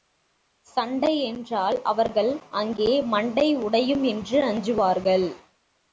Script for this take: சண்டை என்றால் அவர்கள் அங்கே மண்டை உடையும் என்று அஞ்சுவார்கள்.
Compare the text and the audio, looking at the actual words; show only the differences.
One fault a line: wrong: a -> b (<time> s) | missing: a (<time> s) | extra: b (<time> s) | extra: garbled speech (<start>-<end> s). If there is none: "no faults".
no faults